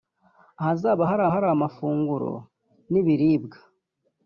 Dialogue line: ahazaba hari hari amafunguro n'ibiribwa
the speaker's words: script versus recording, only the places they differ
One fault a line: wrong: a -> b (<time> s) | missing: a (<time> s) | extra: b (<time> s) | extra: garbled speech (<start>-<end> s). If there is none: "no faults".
no faults